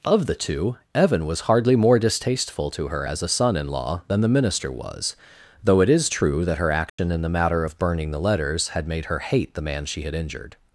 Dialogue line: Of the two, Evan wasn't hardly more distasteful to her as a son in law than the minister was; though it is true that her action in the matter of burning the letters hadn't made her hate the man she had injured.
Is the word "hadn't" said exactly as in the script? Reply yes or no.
no